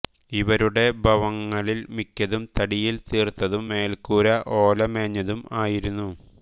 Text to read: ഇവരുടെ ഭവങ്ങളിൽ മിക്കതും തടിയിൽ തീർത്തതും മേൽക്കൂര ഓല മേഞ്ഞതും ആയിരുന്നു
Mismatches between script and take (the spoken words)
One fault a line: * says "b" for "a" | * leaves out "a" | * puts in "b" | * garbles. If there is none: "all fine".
all fine